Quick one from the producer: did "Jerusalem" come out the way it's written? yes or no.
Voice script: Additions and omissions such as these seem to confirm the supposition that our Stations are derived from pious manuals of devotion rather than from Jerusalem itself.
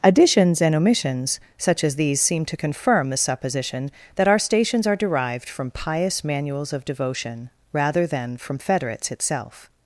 no